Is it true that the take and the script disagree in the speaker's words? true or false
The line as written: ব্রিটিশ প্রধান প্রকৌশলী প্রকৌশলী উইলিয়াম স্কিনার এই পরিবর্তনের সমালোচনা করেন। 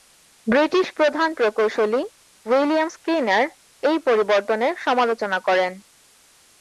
true